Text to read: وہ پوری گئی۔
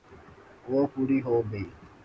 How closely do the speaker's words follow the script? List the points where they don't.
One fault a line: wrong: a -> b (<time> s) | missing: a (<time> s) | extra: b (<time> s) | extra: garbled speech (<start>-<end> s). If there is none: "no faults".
extra: ہو (1.2 s)